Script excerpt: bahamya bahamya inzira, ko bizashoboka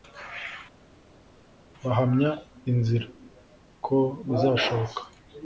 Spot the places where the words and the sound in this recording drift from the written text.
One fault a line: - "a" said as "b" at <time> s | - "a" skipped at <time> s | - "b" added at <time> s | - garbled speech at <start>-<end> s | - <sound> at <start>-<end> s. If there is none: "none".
- "bahamya" skipped at 2.3 s